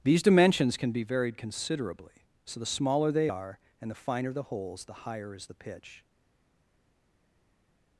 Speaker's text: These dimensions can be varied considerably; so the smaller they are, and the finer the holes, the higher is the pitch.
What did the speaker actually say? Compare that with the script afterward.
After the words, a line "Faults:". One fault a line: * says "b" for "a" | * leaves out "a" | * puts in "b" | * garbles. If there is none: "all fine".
These dimensions can be varied considerably; so the smaller they are, and the finer the holes, the higher is the pitch.
Faults:
all fine